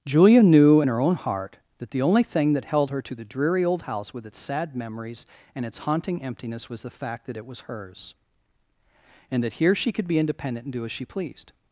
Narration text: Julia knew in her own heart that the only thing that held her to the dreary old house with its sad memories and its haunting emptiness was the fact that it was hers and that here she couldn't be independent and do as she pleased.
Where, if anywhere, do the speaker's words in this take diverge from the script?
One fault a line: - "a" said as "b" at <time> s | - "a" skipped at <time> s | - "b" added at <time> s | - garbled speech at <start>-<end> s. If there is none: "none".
- "couldn't" said as "could" at 9.9 s